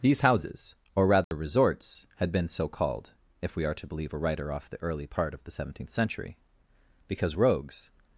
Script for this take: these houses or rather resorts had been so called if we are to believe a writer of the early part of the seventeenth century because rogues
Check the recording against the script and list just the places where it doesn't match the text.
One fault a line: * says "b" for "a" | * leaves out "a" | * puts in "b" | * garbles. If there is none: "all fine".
* says "off" for "of"